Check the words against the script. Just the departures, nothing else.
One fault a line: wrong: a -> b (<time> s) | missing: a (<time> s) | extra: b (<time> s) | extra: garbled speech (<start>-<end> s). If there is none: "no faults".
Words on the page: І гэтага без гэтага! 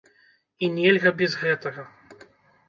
wrong: гэтага -> нельга (0.8 s)